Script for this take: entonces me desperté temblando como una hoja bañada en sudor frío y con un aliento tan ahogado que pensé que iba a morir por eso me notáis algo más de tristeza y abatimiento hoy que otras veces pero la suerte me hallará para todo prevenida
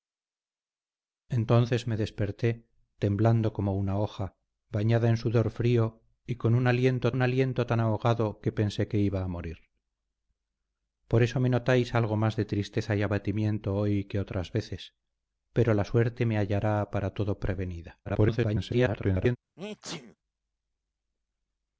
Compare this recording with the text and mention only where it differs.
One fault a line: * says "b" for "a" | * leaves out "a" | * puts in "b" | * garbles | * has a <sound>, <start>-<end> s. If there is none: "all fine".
* puts in "un aliento"
* garbles
* has a sneeze, 19.6-20.2 s